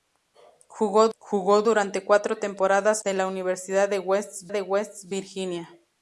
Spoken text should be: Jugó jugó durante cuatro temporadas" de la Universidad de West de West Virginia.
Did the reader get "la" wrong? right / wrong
right